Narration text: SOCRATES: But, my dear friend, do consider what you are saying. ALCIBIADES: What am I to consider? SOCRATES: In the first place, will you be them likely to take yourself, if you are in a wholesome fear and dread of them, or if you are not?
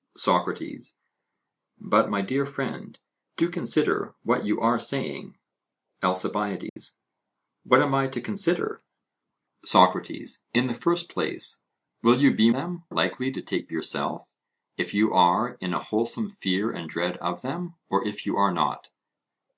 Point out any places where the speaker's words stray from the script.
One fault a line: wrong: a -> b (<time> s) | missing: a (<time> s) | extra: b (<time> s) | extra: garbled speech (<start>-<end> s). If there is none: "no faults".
no faults